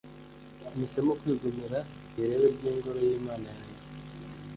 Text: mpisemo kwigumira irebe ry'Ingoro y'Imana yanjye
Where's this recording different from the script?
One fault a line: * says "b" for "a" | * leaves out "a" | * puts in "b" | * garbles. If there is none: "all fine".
all fine